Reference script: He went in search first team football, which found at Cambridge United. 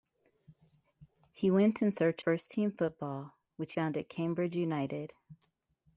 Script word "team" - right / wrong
right